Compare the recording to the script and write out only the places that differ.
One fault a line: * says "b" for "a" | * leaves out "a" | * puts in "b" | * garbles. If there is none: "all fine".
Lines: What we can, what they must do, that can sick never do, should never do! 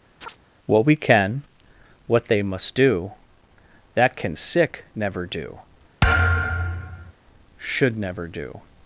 all fine